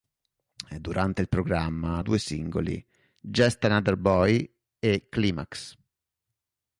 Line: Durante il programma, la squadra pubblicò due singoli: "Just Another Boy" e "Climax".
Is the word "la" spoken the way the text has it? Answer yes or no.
no